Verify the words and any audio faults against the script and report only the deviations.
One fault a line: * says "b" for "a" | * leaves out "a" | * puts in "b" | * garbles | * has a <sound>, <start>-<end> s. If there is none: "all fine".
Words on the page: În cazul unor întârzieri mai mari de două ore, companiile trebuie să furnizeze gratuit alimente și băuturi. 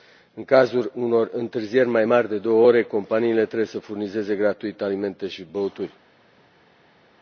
all fine